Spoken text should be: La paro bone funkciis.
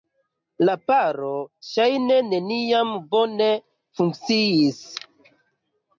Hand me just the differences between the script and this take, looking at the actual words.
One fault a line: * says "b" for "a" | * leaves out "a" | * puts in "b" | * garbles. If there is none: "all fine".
* puts in "ŝajne neniam"